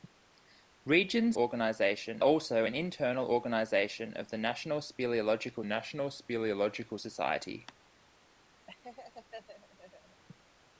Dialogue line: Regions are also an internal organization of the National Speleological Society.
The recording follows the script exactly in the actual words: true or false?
false